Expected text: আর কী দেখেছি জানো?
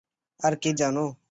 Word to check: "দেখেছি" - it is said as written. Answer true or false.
false